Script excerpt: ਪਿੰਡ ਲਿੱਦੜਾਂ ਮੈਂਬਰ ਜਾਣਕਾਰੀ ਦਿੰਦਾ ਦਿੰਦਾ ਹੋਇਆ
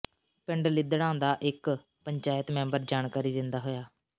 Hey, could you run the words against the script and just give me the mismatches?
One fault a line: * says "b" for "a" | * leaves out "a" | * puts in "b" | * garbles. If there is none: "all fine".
* puts in "ਦਾ ਇਕ ਪੰਚਾਇਤ"
* leaves out "ਦਿੰਦਾ"